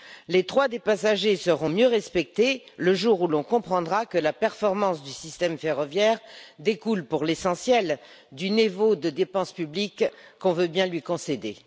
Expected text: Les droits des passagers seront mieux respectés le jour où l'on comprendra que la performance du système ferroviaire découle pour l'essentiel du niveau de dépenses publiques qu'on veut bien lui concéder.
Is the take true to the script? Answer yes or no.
yes